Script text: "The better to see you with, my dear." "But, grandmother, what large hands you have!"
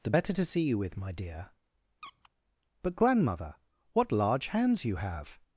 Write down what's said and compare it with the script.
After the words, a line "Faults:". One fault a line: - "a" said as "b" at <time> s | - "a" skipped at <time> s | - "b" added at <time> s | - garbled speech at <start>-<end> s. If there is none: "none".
"The better to see you with, my dear." "But, grandmother, what large hands you have!"
Faults:
none